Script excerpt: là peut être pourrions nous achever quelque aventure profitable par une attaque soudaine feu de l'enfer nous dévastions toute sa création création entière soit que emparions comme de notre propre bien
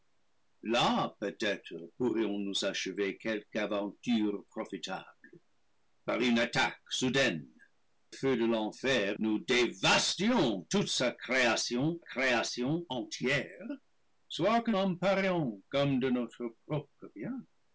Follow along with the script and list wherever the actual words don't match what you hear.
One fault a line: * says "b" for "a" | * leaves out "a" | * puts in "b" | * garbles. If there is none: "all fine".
all fine